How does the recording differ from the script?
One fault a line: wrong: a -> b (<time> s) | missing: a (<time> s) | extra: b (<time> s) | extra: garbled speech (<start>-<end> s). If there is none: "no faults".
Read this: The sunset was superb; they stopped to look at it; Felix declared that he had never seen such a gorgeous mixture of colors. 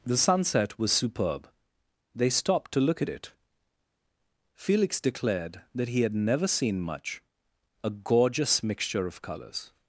wrong: such -> much (6.8 s)